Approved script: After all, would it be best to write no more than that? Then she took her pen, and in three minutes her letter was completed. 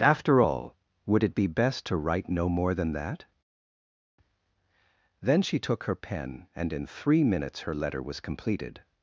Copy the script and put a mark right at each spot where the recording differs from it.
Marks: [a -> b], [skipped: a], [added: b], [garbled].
After all, would it be best to write no more than that? Then she took her pen, and in three minutes her letter was completed.